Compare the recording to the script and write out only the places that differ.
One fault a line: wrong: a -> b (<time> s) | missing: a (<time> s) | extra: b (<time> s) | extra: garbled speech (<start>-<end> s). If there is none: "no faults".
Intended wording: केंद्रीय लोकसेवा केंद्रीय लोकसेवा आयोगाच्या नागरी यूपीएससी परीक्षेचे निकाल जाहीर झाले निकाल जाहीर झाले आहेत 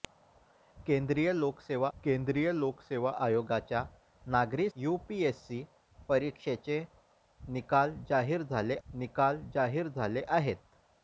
no faults